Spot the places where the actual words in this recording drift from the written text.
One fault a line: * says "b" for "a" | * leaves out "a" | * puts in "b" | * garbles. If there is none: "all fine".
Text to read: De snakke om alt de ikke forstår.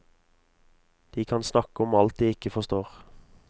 * puts in "kan"